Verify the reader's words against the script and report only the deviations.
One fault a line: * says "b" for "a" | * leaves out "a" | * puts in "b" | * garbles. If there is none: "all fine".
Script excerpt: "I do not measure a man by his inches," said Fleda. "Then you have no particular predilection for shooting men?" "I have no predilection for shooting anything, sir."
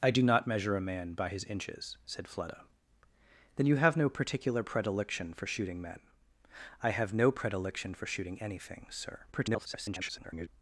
* garbles